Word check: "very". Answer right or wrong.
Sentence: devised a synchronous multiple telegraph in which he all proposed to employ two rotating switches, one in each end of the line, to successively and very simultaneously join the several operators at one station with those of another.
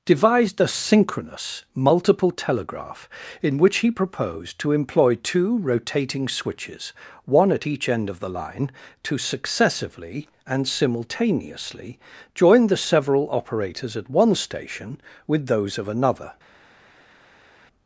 wrong